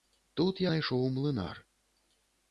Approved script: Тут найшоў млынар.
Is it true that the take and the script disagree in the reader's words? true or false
false